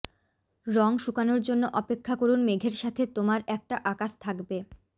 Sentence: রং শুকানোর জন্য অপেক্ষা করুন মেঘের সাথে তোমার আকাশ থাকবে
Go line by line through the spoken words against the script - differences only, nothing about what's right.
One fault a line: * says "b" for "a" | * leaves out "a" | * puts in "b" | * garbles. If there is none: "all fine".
* puts in "একটা"